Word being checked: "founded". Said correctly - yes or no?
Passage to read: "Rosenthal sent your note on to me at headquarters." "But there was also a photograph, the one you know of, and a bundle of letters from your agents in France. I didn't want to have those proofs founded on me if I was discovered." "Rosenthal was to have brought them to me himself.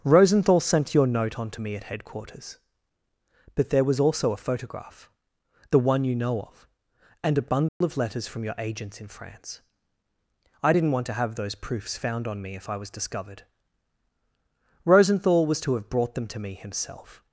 no